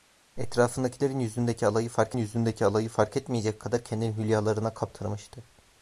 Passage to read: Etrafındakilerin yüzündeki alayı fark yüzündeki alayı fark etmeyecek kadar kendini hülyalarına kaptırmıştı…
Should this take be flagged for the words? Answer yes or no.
no